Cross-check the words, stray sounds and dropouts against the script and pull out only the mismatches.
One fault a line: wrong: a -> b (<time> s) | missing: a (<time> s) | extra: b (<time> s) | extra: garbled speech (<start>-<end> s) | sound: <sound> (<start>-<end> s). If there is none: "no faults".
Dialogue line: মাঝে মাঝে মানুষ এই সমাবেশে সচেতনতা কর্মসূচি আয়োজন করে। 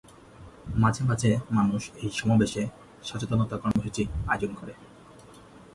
sound: dropout (3.7-3.8 s)